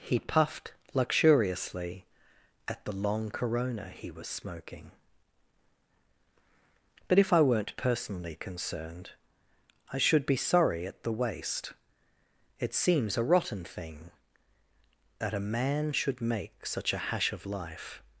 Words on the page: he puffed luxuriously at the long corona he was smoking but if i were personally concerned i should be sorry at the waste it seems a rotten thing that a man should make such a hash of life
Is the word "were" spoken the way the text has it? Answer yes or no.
no